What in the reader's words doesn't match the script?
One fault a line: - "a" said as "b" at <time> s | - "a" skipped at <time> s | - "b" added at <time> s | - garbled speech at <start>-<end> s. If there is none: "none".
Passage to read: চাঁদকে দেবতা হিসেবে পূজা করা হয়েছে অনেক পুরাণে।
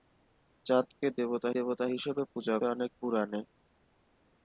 - "দেবতা" added at 1.5 s
- "করা হয়েছে" skipped at 2.6 s